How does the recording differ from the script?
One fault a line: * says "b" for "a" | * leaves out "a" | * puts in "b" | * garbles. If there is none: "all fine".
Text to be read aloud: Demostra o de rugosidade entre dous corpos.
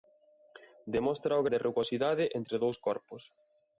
all fine